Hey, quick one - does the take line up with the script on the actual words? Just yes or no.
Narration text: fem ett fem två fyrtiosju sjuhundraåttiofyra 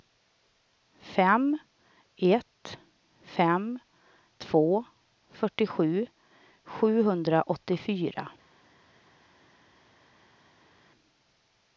yes